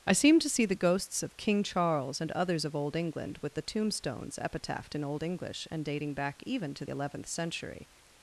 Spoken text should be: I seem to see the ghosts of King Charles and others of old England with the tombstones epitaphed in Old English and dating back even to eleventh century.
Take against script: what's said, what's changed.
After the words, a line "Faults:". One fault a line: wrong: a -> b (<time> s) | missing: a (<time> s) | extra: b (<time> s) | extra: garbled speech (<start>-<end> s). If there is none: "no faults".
I seem to see the ghosts of King Charles and others of old England with the tombstones epitaphed in Old English and dating back even to eleventh century.
Faults:
no faults